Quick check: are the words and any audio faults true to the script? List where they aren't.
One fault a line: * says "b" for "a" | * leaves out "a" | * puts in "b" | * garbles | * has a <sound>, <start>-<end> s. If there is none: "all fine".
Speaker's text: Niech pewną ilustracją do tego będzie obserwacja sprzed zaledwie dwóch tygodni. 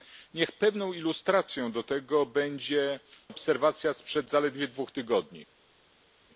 all fine